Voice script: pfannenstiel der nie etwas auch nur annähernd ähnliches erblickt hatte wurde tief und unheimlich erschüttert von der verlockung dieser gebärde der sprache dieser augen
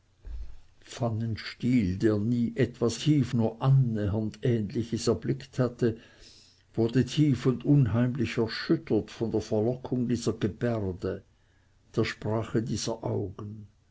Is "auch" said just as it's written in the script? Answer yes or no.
no